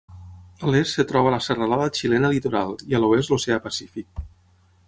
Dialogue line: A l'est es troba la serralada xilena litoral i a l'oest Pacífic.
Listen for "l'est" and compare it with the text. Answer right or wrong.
right